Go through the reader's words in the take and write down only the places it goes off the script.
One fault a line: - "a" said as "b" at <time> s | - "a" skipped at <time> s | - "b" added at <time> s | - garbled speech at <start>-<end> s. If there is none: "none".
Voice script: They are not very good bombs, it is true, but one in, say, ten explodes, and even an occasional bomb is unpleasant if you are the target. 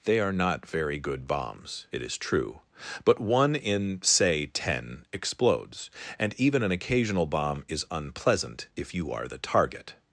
none